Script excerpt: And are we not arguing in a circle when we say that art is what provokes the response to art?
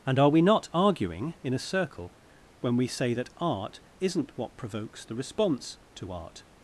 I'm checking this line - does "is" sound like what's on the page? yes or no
no